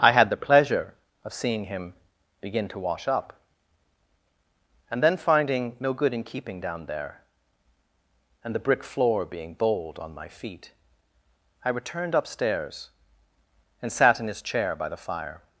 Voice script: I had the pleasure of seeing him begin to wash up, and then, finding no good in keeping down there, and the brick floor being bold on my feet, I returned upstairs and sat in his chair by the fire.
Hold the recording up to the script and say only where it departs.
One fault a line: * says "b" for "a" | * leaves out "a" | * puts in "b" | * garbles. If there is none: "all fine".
all fine